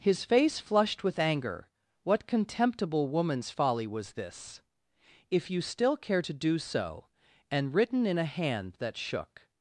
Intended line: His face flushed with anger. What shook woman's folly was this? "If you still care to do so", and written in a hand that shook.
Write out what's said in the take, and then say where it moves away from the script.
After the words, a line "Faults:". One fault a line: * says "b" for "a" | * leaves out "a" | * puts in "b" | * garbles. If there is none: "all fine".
His face flushed with anger. What contemptible woman's folly was this? "If you still care to do so", and written in a hand that shook.
Faults:
* says "contemptible" for "shook"